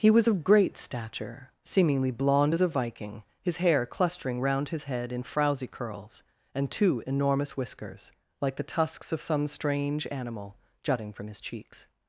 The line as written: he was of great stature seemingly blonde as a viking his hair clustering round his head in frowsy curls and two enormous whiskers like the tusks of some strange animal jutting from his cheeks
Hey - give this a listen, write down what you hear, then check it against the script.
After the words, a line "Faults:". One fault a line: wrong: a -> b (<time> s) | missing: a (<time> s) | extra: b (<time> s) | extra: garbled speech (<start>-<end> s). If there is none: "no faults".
he was of great stature seemingly blonde as a viking his hair clustering round his head in frowsy curls and two enormous whiskers like the tusks of some strange animal jutting from his cheeks
Faults:
no faults